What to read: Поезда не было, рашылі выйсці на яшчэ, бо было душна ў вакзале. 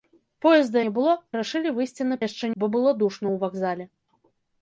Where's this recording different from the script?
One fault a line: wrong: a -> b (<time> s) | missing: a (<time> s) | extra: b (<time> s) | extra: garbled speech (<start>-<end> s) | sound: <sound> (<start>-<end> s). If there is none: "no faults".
no faults